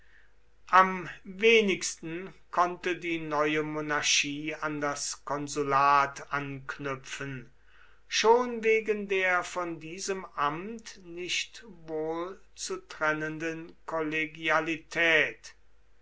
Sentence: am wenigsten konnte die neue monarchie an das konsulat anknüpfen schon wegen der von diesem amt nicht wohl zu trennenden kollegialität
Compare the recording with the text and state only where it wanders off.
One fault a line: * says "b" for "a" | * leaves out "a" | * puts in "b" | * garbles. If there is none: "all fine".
all fine